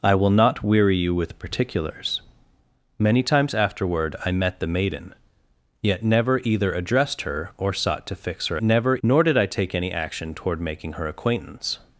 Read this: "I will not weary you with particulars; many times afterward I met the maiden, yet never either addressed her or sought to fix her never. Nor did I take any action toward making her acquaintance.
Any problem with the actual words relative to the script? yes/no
no